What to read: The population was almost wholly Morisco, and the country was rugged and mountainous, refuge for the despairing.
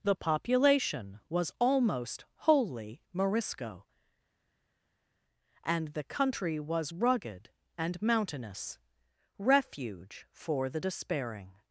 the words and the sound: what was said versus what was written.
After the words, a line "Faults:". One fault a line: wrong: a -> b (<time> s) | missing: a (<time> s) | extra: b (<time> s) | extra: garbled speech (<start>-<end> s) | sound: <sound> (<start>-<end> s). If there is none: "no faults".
The population was almost wholly Morisco, and the country was rugged and mountainous, refuge for the despairing.
Faults:
no faults